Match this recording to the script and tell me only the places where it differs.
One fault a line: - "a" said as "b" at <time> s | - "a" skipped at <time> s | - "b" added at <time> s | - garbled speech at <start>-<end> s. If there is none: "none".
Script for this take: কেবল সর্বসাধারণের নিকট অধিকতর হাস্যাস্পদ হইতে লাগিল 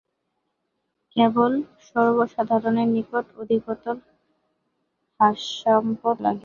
- "হইতে" skipped at 6.2 s